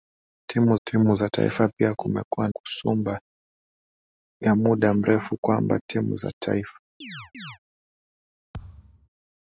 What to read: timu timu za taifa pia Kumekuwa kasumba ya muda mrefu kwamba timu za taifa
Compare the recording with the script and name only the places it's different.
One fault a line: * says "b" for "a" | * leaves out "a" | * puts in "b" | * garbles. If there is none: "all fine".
all fine